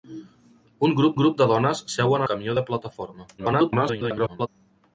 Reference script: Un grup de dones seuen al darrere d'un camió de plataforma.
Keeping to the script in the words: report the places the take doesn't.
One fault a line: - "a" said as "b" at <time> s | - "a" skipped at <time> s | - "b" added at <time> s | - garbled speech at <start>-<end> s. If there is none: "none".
- "grup" added at 1.2 s
- "al darrere d'un" skipped at 2.3 s
- garbled speech at 3.4-4.5 s